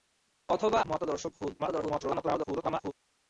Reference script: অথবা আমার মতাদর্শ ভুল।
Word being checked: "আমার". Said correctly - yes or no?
no